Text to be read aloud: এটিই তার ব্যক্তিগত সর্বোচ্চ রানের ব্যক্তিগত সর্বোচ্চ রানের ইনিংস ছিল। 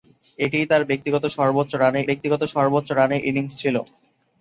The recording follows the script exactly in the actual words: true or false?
true